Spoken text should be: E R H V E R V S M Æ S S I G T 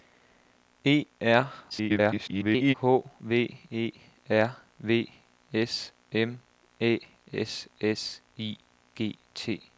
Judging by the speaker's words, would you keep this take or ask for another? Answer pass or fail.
fail